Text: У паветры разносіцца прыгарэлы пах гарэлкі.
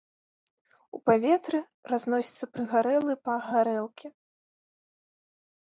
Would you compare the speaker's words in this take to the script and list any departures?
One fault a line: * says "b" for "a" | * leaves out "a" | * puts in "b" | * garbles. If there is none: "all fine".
all fine